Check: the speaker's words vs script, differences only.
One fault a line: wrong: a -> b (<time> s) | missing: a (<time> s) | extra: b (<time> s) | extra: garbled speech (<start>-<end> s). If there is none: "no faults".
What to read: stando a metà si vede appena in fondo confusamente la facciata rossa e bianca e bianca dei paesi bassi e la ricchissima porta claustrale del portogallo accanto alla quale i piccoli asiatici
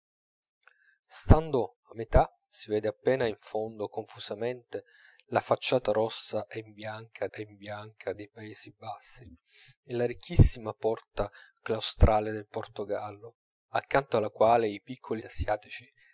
no faults